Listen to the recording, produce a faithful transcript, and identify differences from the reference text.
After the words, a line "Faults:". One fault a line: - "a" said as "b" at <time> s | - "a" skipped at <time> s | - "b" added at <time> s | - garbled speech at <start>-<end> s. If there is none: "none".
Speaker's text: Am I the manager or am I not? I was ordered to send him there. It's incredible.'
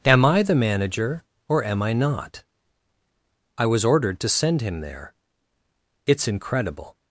Am I the manager or am I not? I was ordered to send him there. It's incredible.'
Faults:
none